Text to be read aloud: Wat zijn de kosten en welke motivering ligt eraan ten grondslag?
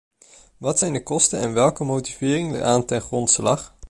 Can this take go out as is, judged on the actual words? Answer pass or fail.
fail